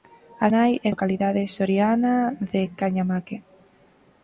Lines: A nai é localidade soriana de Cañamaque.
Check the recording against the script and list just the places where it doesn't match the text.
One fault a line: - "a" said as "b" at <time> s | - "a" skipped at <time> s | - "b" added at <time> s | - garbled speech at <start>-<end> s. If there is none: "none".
none